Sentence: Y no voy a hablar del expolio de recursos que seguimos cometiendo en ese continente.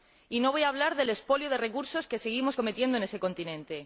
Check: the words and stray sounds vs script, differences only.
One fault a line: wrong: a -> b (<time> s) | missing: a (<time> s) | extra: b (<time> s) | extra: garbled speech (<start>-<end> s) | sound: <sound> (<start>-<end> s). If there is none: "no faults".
no faults